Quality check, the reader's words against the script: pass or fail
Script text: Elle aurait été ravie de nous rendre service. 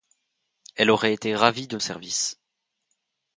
fail